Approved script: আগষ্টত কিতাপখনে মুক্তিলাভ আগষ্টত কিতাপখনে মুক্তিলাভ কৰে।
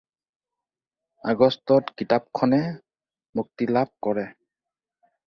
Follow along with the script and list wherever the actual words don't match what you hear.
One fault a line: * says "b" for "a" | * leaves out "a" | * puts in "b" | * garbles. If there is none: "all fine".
* leaves out "আগষ্টত কিতাপখনে মুক্তিলাভ"